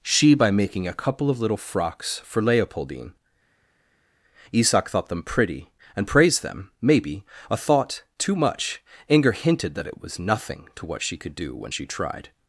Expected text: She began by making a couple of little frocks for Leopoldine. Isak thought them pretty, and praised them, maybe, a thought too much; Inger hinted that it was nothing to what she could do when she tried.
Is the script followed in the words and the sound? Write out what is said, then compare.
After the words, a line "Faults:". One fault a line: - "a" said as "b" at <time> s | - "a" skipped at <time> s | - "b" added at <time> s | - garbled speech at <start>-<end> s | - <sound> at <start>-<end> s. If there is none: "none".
She by making a couple of little frocks for Leopoldine. Isak thought them pretty, and praised them, maybe, a thought too much; Inger hinted that it was nothing to what she could do when she tried.
Faults:
- "began" skipped at 0.3 s